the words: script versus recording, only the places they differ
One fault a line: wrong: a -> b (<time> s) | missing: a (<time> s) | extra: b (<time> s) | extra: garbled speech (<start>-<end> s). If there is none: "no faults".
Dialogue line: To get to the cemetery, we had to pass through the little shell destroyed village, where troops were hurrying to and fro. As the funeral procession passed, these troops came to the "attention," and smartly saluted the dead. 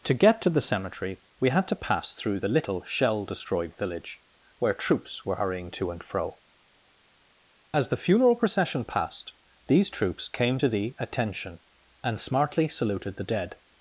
no faults